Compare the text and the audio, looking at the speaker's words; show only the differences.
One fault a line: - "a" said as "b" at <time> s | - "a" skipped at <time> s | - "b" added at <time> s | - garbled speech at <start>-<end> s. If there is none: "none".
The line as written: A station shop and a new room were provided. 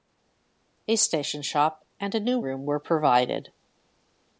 none